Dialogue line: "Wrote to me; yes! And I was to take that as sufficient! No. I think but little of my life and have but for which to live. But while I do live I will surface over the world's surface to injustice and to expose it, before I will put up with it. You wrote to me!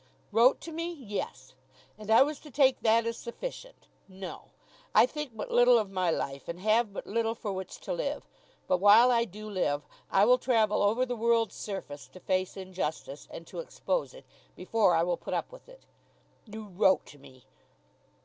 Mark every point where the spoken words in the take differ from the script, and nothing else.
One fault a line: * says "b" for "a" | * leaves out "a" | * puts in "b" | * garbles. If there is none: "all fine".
* puts in "little"
* says "travel" for "surface"
* puts in "face"